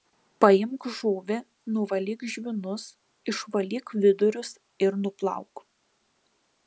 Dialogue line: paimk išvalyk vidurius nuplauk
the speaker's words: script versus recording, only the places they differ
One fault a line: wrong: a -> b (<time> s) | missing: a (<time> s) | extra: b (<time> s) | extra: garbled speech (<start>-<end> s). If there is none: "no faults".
extra: žuvį nuvalyk žvynus (1.0 s)
extra: ir (4.9 s)